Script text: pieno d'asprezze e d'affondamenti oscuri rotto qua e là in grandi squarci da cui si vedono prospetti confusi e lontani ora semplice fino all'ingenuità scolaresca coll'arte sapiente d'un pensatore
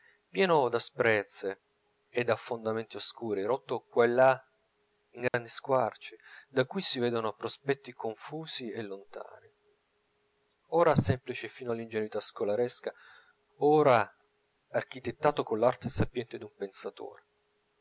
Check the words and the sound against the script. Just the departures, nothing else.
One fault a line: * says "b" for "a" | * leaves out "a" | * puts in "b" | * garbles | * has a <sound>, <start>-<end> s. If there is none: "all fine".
* has a dropout, 5.3-5.3 s
* puts in "ora architettato"